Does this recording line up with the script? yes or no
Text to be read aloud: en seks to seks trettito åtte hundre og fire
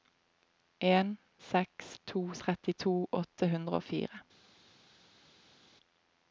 no